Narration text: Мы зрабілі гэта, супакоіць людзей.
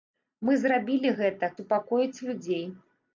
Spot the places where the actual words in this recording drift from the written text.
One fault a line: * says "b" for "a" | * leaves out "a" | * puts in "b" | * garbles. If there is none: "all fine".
all fine